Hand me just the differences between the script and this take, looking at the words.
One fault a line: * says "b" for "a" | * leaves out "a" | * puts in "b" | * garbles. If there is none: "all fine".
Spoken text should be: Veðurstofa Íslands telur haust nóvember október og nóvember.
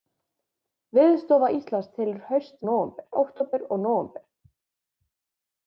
all fine